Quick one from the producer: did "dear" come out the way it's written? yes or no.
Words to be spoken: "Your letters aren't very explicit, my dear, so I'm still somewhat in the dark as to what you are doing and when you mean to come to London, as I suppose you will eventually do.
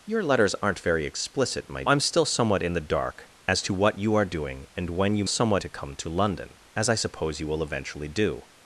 no